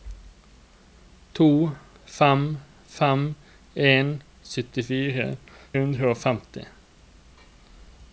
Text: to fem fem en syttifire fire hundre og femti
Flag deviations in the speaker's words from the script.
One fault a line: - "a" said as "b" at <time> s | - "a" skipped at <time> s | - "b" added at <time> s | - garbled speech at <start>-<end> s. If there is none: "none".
- "fire" skipped at 5.3 s